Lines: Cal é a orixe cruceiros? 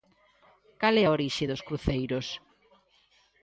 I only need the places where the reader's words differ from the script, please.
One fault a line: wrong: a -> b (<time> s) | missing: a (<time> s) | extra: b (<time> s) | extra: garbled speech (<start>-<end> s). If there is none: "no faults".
extra: dos (1.5 s)